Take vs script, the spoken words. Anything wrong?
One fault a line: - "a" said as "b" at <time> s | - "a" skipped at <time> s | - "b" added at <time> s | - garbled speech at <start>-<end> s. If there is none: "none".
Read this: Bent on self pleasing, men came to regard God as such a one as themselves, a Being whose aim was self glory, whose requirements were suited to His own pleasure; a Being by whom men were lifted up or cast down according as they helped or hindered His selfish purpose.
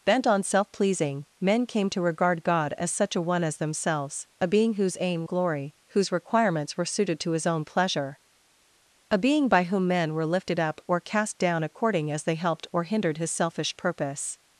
- "was self" skipped at 5.3 s